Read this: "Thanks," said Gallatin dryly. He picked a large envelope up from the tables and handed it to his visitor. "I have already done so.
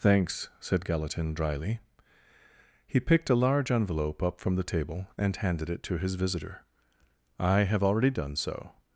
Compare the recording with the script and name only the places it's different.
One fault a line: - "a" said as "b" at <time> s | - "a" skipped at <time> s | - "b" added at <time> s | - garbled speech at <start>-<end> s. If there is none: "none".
- "tables" said as "table" at 4.6 s